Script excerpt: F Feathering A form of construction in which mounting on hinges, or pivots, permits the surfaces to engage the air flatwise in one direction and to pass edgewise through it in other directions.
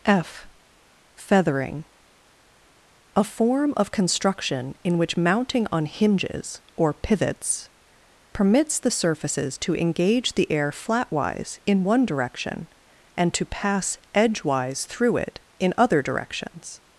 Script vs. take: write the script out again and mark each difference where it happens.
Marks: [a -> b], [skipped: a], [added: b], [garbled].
F Feathering A form of construction in which mounting on hinges, or pivots, permits the surfaces to engage the air flatwise in one direction and to pass edgewise through it in other directions.